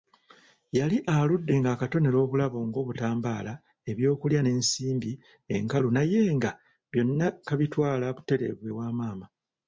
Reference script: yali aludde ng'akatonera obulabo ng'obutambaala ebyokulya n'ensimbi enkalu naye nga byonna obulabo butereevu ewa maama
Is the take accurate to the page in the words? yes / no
no